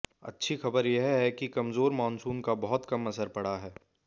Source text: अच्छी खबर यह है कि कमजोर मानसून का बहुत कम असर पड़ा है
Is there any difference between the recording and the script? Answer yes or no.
no